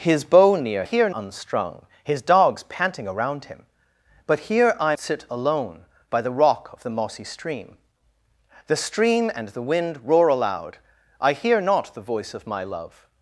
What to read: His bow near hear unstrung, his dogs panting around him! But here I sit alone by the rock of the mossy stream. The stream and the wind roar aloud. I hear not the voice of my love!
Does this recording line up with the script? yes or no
yes